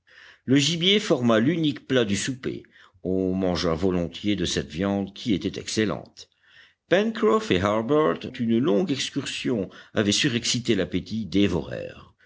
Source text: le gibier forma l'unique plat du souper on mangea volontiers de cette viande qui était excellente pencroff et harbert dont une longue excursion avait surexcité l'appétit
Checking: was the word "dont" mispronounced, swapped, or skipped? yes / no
yes